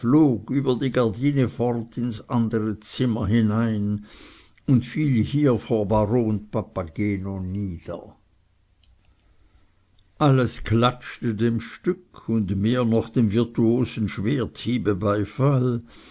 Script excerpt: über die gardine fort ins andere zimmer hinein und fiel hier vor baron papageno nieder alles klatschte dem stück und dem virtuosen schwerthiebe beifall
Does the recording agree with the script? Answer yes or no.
no